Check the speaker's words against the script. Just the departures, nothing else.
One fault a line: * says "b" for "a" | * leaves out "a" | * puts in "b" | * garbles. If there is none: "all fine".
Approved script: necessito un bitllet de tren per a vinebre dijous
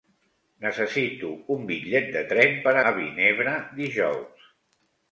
all fine